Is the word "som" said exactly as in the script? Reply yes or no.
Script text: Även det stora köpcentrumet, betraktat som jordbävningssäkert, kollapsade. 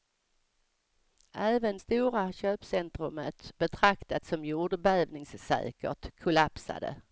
yes